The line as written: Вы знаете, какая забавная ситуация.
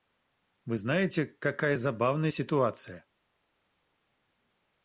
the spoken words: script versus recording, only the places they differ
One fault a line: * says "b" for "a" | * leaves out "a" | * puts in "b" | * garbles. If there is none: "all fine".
all fine